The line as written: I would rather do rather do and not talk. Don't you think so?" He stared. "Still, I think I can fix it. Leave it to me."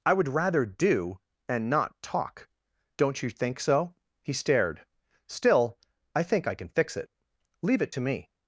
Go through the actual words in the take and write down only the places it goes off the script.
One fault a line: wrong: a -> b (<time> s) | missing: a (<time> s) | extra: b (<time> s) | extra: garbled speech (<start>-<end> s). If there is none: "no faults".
missing: rather do (1.2 s)